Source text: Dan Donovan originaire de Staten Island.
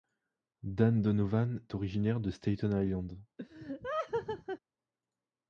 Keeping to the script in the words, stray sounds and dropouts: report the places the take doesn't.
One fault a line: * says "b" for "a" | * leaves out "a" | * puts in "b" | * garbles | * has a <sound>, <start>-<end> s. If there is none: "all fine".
* has a laugh, 3.4-4.6 s